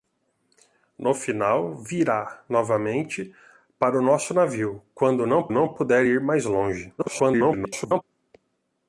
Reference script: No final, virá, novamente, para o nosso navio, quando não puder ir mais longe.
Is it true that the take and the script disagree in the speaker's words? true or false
true